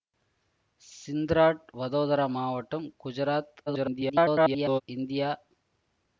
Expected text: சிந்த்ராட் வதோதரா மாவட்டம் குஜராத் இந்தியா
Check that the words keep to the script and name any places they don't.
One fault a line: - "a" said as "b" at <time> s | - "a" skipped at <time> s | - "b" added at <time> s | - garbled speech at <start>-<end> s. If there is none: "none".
- garbled speech at 3.7-4.8 s